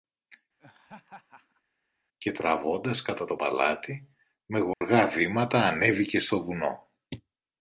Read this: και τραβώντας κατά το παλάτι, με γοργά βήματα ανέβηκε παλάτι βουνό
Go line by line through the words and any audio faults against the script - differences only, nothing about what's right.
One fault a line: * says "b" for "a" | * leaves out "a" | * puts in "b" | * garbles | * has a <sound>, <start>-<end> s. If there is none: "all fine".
* has a laugh, 0.6-1.6 s
* has a dropout, 4.7-4.8 s
* says "στο" for "παλάτι"